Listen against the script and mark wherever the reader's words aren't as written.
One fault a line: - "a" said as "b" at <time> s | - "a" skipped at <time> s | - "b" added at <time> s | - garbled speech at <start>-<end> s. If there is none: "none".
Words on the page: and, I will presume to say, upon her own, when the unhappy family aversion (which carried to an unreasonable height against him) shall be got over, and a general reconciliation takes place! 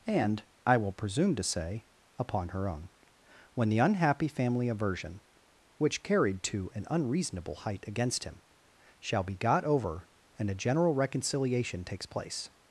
none